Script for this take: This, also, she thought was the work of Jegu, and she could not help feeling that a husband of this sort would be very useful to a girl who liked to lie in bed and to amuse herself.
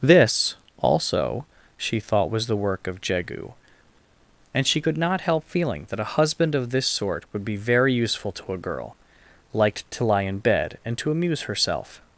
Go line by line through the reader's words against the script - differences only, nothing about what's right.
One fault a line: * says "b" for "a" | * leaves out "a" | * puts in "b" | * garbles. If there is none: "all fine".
* leaves out "who"